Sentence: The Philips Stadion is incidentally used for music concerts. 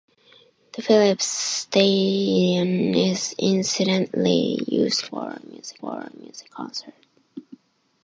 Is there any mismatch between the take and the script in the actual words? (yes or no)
yes